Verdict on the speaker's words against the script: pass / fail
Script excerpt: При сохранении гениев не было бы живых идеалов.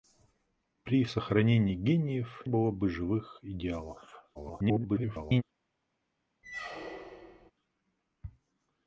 fail